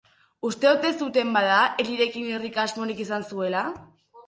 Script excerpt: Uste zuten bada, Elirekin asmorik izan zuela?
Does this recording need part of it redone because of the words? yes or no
yes